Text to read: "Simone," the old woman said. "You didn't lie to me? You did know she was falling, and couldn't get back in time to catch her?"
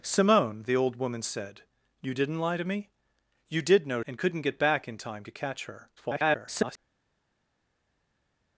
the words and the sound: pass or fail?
fail